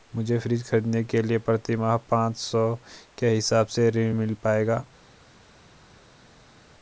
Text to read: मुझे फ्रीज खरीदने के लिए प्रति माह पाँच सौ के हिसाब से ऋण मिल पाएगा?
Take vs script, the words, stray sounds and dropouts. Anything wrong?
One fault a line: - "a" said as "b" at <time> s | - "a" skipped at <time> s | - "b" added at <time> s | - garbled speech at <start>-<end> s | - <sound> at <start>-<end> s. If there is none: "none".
none